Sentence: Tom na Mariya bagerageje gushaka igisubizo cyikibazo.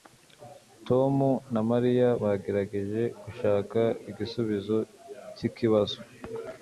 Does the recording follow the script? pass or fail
pass